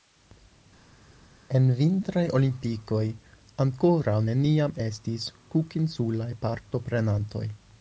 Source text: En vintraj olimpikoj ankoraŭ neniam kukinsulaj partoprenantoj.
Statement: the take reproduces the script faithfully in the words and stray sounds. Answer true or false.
false